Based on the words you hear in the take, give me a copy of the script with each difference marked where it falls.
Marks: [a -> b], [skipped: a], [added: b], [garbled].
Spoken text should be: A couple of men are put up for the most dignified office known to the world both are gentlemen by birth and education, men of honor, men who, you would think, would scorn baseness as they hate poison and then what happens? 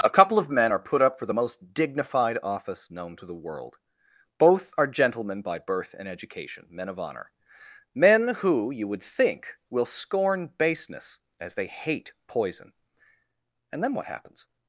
A couple of men are put up for the most dignified office known to the world both are gentlemen by birth and education, men of honor, men who, you would think, [would -> will] scorn baseness as they hate poison and then what happens?